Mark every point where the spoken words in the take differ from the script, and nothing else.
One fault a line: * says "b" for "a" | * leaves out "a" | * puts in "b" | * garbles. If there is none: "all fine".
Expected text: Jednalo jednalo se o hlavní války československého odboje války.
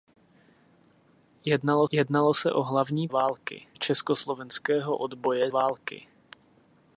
all fine